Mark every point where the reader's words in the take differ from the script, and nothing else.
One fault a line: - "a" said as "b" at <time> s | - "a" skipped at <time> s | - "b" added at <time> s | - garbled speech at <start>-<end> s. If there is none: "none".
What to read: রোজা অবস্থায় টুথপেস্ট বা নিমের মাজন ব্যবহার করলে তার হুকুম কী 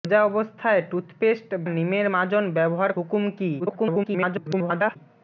- "বা" skipped at 1.5 s
- "করলে তার" skipped at 2.9 s
- garbled speech at 3.6-5.0 s